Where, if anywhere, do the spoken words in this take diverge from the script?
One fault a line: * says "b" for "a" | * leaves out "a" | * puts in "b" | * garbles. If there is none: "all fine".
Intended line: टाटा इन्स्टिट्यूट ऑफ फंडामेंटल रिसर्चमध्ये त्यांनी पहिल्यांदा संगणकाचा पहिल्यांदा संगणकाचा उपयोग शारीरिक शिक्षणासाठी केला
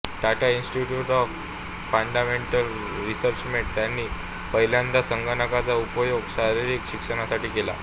* leaves out "पहिल्यांदा संगणकाचा"